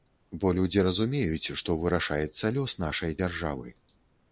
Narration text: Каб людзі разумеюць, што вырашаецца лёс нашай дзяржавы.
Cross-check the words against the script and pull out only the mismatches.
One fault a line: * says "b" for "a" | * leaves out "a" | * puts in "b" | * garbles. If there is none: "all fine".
* says "Бо" for "Каб"